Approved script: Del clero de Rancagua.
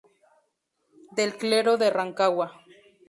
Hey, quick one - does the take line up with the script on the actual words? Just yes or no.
yes